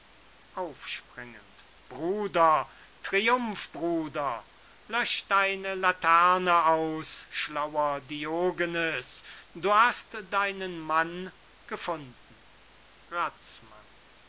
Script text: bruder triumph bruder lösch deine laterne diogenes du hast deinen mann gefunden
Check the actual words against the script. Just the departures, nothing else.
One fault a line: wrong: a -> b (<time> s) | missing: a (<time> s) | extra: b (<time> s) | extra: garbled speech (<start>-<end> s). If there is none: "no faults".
extra: aus schlauer (6.7 s)